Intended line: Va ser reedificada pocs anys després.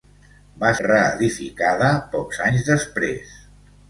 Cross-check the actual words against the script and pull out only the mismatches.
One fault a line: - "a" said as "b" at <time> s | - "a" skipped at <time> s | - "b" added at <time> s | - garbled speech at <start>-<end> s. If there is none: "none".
- "ser" skipped at 0.7 s